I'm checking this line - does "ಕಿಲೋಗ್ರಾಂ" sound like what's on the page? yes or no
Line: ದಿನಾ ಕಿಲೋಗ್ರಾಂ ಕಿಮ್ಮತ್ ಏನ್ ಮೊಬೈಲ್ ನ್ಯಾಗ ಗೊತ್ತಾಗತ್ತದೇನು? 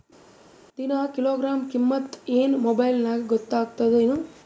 yes